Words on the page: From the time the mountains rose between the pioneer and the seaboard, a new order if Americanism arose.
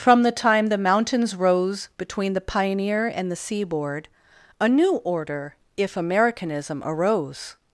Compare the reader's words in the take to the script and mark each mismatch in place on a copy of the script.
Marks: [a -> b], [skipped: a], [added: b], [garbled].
From the time the mountains rose between the pioneer and the seaboard, a new order if Americanism arose.